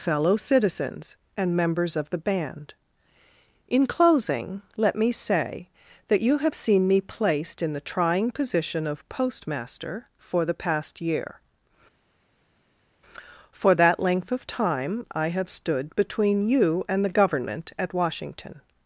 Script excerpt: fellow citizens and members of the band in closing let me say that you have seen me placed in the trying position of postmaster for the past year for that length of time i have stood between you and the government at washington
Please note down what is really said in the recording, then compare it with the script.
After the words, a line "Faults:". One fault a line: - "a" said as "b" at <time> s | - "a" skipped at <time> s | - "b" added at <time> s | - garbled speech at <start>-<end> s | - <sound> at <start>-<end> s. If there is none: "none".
fellow citizens and members of the band in closing let me say that you have seen me placed in the trying position of postmaster for the past year for that length of time i have stood between you and the government at washington
Faults:
none